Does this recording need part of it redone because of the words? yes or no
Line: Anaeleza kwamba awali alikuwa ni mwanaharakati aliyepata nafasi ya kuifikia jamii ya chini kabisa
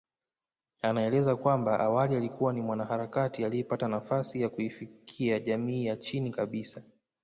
no